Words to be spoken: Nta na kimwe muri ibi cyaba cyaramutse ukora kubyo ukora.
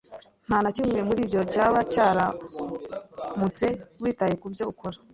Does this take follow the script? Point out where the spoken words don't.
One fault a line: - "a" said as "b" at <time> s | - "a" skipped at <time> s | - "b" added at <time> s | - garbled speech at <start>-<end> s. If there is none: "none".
- "ibi" said as "ibyo" at 1.2 s
- "ukora" said as "witaye" at 4.0 s